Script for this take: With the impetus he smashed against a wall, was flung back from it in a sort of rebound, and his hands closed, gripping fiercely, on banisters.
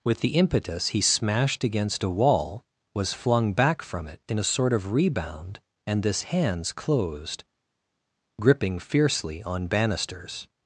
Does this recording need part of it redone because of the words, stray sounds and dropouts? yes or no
yes